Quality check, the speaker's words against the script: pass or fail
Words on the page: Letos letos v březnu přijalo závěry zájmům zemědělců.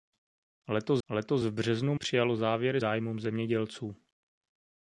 pass